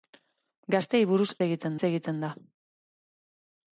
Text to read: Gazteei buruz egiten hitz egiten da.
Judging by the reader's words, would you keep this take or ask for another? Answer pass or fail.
pass